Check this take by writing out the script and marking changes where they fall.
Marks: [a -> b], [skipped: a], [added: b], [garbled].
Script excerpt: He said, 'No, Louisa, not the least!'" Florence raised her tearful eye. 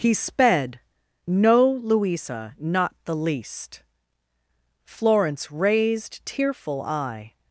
He [said, -> sped] 'No, Louisa, not the least!'" Florence raised [skipped: her] tearful eye.